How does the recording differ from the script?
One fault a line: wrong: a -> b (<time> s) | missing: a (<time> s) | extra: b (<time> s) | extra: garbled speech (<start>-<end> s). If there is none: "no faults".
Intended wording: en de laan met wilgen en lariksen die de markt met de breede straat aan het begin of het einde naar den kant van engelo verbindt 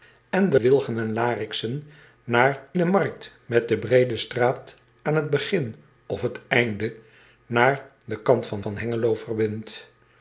missing: laan met (0.6 s)
wrong: die -> naar (2.2 s)
extra: van (8.6 s)